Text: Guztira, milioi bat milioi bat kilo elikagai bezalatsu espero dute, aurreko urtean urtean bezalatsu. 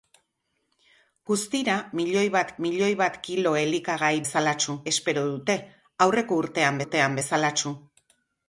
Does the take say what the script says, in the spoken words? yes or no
yes